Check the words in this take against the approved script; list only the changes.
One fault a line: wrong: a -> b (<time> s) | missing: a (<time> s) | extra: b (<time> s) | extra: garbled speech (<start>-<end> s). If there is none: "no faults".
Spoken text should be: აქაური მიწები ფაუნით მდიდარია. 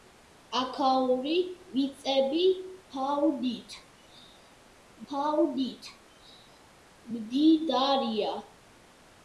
extra: ფაუნით (5.1 s)